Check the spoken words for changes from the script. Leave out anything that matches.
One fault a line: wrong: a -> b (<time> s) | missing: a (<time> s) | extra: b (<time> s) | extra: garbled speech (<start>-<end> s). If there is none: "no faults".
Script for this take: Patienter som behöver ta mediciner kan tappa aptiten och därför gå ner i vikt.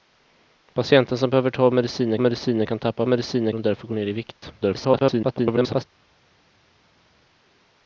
extra: mediciner (2.2 s)
wrong: aptiten -> mediciner (3.1 s)
extra: garbled speech (4.6-5.8 s)